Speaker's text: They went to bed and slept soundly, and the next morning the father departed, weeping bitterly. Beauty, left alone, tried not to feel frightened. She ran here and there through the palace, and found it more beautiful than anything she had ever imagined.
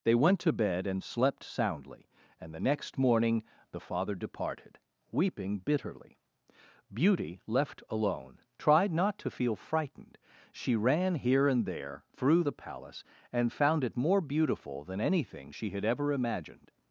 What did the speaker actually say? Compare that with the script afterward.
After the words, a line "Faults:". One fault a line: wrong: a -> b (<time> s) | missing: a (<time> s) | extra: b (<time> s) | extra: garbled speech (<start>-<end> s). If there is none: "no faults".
They went to bed and slept soundly, and the next morning the father departed, weeping bitterly. Beauty, left alone, tried not to feel frightened. She ran here and there through the palace, and found it more beautiful than anything she had ever imagined.
Faults:
no faults